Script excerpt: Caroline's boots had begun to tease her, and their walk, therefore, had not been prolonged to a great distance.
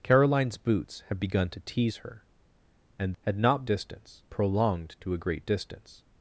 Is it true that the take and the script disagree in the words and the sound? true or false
true